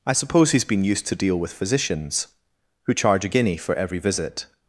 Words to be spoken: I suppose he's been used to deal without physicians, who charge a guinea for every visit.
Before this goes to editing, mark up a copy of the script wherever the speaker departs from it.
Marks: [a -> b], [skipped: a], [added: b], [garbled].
I suppose he's been used to deal [without -> with] physicians, who charge a guinea for every visit.